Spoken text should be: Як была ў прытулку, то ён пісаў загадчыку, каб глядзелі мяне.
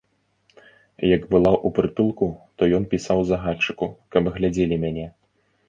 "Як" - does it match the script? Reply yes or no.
yes